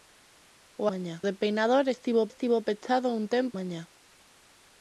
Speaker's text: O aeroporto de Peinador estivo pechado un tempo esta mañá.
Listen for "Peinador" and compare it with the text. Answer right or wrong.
right